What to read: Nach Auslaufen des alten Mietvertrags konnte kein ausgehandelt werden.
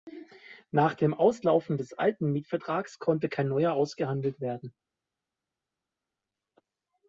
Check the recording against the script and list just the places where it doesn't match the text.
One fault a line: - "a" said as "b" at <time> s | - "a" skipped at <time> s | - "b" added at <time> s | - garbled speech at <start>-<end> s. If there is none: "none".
- "dem" added at 0.9 s
- "neuer" added at 3.5 s